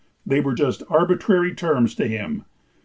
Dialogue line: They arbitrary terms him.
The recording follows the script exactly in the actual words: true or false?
false